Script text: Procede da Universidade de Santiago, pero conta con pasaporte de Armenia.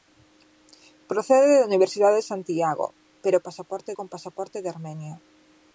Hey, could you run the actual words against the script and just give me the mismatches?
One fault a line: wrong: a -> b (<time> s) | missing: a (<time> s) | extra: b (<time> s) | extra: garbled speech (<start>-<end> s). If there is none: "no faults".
wrong: conta -> pasaporte (3.5 s)